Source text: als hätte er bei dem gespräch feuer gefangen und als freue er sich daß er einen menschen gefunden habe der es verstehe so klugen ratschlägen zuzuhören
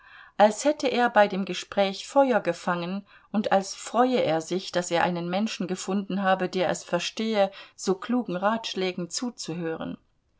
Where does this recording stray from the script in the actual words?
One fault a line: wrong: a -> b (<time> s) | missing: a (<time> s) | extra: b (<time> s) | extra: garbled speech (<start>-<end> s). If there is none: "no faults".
no faults